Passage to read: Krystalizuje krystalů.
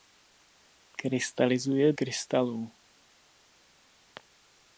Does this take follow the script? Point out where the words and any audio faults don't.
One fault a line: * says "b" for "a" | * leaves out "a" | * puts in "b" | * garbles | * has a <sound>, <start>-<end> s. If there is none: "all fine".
all fine